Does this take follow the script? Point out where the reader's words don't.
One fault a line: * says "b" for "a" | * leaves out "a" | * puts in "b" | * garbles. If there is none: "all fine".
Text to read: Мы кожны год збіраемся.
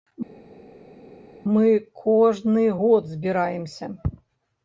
all fine